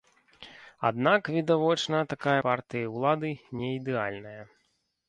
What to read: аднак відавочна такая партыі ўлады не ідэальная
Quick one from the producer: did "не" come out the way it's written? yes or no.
yes